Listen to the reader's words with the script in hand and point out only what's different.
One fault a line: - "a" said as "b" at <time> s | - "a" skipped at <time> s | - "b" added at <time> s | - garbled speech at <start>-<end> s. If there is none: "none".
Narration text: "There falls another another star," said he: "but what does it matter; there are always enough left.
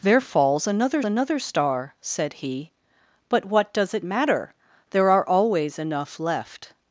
none